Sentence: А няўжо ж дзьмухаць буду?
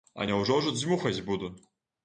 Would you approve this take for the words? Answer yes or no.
yes